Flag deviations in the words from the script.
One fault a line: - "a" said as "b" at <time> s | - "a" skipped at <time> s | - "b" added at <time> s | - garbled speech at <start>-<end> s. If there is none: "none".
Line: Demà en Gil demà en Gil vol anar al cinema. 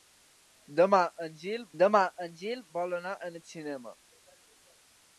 none